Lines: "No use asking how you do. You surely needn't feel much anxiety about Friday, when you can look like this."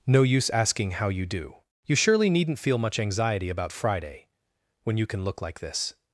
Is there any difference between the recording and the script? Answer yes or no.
no